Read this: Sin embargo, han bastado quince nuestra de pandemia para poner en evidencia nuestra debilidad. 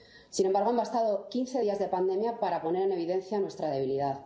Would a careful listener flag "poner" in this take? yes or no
no